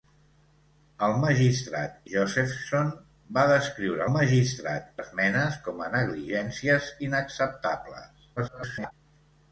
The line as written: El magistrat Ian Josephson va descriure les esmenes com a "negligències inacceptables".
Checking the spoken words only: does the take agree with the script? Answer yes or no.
no